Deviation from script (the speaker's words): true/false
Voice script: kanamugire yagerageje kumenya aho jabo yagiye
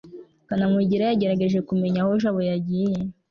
false